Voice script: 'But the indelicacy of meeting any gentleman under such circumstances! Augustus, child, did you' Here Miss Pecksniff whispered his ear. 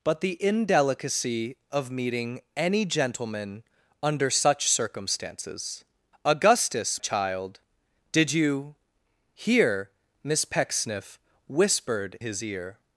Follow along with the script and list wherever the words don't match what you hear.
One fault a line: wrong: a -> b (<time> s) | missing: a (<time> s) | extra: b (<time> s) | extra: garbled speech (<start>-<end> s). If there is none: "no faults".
no faults